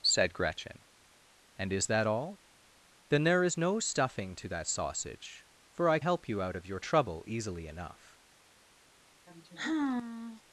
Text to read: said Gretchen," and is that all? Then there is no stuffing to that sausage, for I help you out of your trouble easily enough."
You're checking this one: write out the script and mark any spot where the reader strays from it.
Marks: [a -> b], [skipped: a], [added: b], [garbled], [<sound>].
said Gretchen," and is that all? Then there is no stuffing to that sausage, for I help you out of your trouble easily enough." [sigh]